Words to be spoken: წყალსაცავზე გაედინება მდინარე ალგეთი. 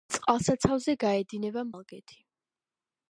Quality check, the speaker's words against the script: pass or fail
fail